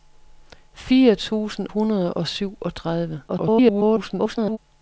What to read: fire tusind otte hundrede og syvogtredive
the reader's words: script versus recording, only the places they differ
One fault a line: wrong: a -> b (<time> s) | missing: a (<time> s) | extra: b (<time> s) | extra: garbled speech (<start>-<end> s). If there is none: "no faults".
missing: otte (1.7 s)
extra: garbled speech (3.3-4.6 s)